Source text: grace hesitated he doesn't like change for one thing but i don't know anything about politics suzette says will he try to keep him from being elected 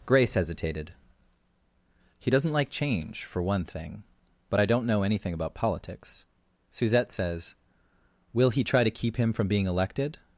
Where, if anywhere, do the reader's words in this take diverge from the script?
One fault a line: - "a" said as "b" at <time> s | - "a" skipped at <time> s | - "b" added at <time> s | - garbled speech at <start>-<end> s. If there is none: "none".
none